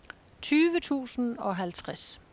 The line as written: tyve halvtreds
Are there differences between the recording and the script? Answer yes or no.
yes